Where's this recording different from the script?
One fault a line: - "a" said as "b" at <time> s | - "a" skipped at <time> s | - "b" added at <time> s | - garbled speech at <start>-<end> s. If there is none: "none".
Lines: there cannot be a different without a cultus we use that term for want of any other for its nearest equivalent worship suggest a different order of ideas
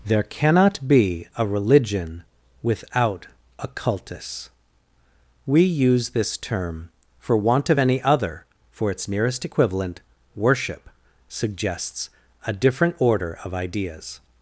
- "different" said as "religion" at 1.4 s
- "that" said as "this" at 6.1 s
- "suggest" said as "suggests" at 11.3 s